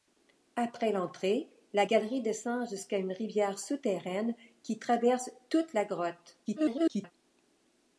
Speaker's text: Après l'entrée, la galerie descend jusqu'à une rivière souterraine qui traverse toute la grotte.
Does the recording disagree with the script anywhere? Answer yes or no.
yes